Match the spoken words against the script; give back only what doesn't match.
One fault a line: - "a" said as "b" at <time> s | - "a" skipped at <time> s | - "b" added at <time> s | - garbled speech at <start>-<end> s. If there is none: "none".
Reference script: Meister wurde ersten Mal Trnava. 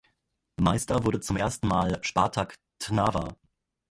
- "zum" added at 1.2 s
- "Spartak" added at 2.0 s